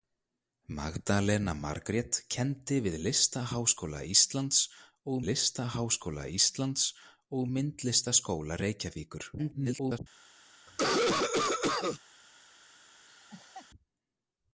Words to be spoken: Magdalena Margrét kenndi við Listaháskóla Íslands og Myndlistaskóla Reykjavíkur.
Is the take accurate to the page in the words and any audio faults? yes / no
no